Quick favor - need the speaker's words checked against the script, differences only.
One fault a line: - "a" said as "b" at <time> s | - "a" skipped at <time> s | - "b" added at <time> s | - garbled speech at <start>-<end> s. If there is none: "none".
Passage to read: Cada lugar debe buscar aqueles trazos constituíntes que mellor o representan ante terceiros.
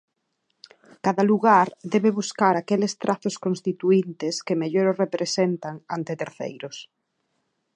none